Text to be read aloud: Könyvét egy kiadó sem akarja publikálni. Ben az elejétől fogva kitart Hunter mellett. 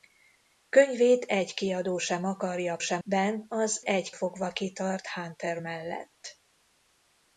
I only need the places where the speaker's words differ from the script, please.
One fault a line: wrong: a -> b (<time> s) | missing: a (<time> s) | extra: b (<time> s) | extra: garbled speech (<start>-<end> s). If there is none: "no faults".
wrong: publikálni -> sem (2.8 s)
wrong: elejétől -> egy (3.8 s)